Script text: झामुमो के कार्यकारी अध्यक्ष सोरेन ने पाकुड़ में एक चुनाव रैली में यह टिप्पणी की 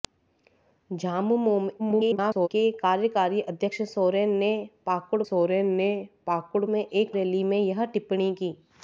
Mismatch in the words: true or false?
true